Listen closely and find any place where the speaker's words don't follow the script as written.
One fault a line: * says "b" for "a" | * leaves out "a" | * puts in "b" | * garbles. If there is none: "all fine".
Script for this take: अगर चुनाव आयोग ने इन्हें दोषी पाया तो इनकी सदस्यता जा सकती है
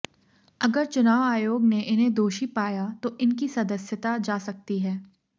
all fine